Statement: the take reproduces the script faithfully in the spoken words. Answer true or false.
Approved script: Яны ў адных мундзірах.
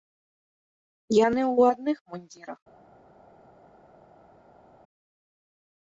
true